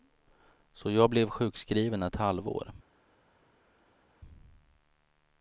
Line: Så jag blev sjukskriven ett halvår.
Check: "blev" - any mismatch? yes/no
no